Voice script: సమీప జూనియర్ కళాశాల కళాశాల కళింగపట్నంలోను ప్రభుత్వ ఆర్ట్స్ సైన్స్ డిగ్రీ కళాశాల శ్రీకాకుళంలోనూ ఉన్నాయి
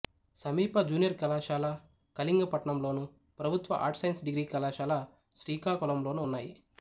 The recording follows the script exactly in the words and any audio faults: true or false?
false